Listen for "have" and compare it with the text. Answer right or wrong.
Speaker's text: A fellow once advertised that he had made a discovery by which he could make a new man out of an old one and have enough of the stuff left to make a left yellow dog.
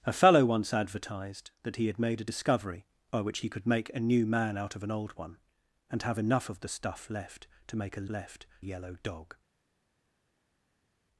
right